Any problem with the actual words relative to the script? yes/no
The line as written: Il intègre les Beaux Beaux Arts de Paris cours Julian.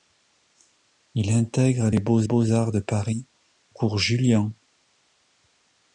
no